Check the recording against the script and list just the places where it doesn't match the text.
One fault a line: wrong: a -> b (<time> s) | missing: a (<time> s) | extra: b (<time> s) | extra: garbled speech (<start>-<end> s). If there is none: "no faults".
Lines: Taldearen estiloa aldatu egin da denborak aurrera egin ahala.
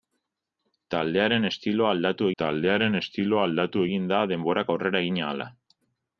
extra: taldearen estiloa aldatu (2.4 s)